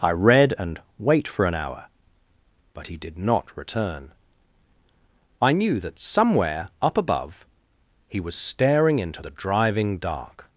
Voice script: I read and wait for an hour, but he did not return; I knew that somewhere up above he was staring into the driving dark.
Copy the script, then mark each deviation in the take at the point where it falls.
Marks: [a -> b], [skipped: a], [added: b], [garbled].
I read and wait for an hour, but he did not return; I knew that somewhere up above he was staring into the driving dark.